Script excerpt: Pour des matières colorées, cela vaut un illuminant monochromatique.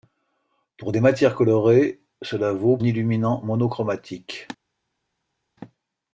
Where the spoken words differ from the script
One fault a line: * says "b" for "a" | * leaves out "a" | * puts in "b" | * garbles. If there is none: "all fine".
all fine